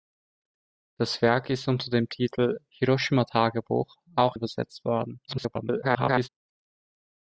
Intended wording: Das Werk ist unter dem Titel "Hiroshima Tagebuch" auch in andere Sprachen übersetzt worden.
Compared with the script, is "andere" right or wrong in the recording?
wrong